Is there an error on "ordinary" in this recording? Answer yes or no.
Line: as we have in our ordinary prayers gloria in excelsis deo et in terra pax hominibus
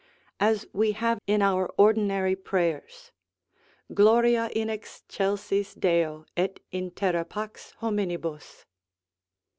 no